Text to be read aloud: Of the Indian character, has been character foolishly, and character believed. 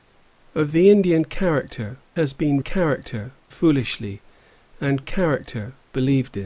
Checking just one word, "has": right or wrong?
right